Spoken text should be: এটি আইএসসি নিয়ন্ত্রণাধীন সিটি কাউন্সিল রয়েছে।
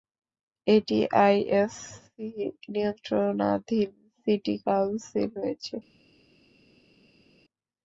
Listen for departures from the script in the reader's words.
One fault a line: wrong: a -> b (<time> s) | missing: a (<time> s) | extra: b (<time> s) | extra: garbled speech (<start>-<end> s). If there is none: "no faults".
no faults